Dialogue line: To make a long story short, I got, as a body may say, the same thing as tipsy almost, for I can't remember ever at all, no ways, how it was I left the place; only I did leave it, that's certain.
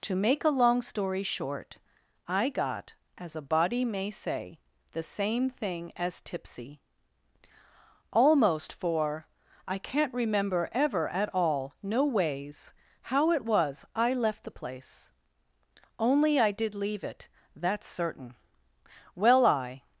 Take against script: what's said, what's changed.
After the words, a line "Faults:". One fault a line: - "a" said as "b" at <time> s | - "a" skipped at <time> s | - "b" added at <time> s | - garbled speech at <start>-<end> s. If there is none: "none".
To make a long story short, I got, as a body may say, the same thing as tipsy almost, for I can't remember ever at all, no ways, how it was I left the place; only I did leave it, that's certain. Well, I
Faults:
- "Well I" added at 19.1 s